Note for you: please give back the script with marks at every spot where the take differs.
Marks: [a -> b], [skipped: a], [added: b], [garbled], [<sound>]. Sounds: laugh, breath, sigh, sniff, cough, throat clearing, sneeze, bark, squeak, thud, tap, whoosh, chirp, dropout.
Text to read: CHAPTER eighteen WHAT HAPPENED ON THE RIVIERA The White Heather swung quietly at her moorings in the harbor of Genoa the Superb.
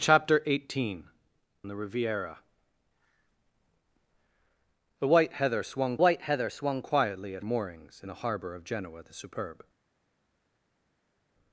CHAPTER eighteen [skipped: WHAT HAPPENED ON] THE RIVIERA The White Heather swung [added: White Heather swung] quietly at [skipped: her] moorings in the harbor of Genoa the Superb.